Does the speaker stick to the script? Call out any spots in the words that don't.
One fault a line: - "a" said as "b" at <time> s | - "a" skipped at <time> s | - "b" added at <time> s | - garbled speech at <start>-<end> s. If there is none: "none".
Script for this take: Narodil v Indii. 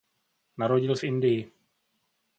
none